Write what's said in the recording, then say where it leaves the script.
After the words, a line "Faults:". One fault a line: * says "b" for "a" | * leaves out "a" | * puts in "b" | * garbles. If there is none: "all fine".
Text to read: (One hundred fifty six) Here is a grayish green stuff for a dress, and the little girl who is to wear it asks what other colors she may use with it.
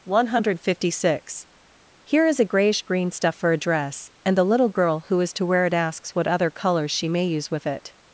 (One hundred fifty six) Here is a grayish green stuff for a dress, and the little girl who is to wear it asks what other colors she may use with it.
Faults:
all fine